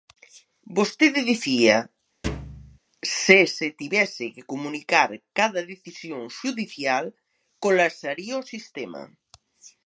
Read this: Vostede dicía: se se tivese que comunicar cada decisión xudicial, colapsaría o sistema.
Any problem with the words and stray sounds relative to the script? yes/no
yes